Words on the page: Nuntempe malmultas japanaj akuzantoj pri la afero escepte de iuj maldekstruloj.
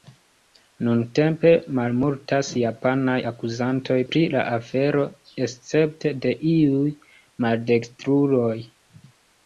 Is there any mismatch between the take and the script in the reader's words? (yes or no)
no